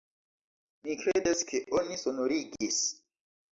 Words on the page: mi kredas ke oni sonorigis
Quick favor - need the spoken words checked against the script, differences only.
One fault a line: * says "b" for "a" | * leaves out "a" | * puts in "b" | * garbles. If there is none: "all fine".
all fine